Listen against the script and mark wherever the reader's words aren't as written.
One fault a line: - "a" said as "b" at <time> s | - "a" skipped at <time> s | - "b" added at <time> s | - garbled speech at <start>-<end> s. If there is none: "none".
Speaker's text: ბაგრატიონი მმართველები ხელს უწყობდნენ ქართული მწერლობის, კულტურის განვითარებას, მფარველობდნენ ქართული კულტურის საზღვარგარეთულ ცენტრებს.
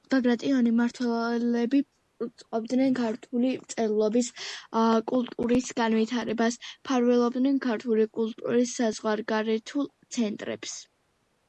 - "ხელს" skipped at 1.8 s